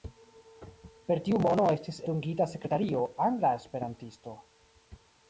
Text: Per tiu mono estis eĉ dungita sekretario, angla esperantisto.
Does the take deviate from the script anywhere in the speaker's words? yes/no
yes